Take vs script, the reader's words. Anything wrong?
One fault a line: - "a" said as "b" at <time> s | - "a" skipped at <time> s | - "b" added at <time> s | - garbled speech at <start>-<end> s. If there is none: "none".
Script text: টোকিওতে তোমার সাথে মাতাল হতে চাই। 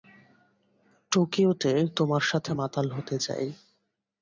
none